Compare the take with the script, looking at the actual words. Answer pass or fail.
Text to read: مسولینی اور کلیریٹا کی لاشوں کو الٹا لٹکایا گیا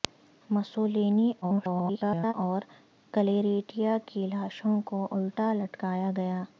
fail